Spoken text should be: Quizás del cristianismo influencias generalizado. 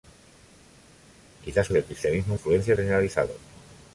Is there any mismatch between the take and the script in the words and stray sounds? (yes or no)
no